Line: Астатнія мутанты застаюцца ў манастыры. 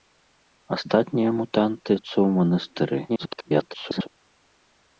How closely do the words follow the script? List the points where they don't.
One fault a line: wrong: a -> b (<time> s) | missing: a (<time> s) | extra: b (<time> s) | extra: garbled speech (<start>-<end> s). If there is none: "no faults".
missing: застаюцца (1.9 s)
extra: garbled speech (3.1-4.1 s)